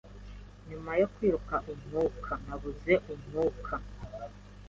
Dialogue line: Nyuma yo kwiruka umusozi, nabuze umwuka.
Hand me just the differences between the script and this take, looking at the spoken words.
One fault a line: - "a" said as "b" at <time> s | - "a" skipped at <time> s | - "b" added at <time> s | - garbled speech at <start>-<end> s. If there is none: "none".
- "umusozi" said as "umwuka" at 1.7 s